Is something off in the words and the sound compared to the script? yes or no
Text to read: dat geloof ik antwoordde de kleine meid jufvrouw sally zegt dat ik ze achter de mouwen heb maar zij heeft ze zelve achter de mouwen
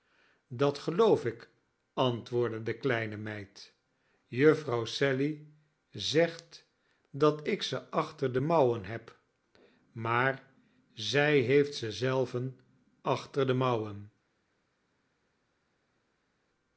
no